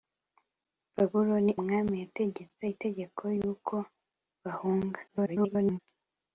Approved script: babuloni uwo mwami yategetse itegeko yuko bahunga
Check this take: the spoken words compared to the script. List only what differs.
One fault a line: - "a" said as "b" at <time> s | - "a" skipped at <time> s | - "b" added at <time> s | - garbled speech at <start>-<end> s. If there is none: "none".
- "uwo" skipped at 1.5 s
- garbled speech at 5.1-5.8 s